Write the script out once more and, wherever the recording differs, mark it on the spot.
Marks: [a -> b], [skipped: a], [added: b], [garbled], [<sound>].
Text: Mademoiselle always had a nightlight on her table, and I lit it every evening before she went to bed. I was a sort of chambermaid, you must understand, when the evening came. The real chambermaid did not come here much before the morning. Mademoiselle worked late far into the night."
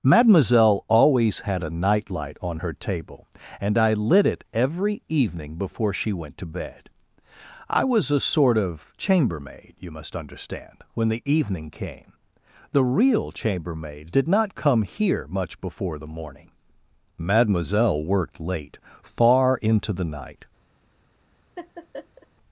Mademoiselle always had a nightlight on her table, and I lit it every evening before she went to bed. I was a sort of chambermaid, you must understand, when the evening came. The real chambermaid did not come here much before the morning. Mademoiselle worked late far into the night." [laugh]